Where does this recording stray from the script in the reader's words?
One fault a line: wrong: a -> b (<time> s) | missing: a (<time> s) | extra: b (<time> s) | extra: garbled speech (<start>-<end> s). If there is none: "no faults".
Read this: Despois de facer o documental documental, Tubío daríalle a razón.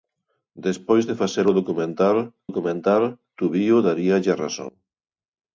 no faults